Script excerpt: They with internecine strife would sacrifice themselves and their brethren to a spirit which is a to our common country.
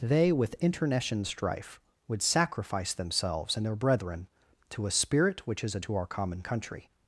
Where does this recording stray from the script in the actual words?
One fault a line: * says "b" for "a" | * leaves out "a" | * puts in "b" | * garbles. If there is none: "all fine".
all fine